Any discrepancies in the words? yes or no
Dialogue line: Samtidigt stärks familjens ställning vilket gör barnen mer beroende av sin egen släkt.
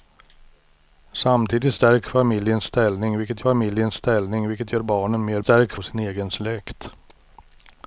yes